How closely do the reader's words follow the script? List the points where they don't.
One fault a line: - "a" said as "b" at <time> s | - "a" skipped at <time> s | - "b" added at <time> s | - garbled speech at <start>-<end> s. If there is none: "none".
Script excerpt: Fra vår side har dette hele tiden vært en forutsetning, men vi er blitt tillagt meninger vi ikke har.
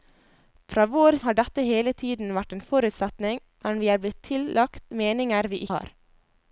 - "side" skipped at 1.2 s
- "ikke" skipped at 5.6 s